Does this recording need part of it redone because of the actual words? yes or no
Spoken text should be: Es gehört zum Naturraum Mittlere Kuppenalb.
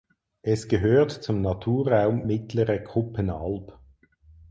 no